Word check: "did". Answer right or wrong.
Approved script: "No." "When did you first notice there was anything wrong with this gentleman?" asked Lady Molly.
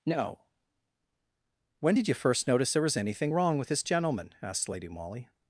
right